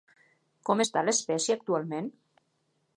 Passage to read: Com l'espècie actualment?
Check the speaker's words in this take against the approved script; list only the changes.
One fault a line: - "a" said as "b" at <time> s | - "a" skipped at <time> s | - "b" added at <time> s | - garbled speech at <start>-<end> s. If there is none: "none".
- "està" added at 0.8 s